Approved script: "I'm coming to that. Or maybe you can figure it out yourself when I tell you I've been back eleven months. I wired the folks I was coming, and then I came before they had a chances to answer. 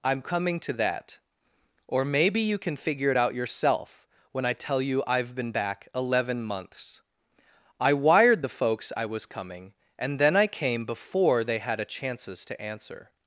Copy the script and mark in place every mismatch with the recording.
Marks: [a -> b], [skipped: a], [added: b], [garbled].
"I'm coming to that. Or maybe you can figure it out yourself when I tell you I've been back eleven months. I wired the folks I was coming, and then I came before they had a chances to answer.